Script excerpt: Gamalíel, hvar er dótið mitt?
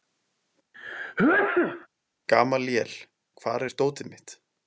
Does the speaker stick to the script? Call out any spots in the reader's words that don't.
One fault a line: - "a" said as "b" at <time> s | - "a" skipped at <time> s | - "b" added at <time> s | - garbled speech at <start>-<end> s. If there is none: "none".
none